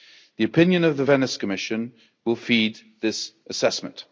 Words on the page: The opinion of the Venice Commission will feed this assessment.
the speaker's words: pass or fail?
pass